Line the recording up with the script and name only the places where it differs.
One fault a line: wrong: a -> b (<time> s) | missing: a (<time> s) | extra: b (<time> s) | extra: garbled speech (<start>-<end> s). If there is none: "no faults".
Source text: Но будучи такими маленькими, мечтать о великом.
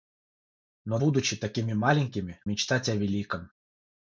no faults